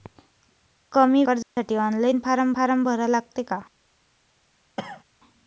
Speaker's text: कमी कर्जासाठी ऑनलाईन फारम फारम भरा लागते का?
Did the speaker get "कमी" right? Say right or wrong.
right